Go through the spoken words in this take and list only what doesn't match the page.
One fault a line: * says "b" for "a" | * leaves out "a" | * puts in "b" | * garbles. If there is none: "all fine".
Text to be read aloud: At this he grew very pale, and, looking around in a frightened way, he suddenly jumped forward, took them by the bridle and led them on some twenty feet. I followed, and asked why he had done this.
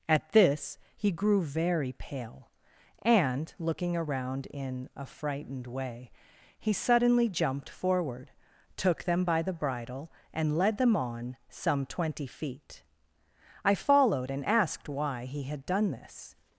all fine